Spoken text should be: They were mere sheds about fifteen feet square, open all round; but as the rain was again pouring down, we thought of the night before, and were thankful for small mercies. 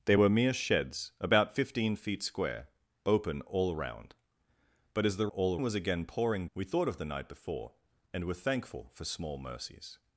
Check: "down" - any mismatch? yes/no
yes